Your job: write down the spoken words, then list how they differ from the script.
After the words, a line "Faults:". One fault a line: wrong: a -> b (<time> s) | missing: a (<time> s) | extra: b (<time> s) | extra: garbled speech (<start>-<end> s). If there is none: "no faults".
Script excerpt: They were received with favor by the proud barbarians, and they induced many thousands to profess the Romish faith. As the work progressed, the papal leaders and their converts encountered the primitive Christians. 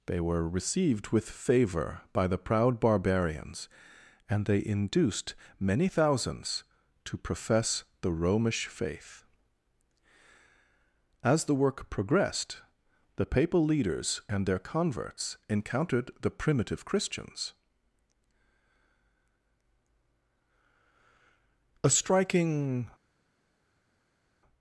They were received with favor by the proud barbarians, and they induced many thousands to profess the Romish faith. As the work progressed, the papal leaders and their converts encountered the primitive Christians. A striking
Faults:
extra: A striking (21.8 s)